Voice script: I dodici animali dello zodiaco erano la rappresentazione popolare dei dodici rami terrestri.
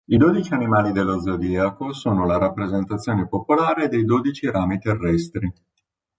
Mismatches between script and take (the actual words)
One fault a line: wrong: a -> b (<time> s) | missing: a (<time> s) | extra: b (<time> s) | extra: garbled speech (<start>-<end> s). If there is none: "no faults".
wrong: erano -> sono (1.9 s)